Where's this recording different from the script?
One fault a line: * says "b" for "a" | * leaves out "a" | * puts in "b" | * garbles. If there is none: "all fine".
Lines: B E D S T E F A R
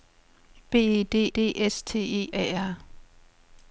* puts in "D"
* leaves out "F"